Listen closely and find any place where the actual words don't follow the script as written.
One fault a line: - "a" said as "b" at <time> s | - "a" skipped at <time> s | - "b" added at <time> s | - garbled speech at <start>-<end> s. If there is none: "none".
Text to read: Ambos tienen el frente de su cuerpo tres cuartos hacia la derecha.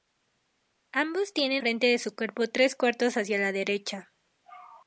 - "el" skipped at 1.6 s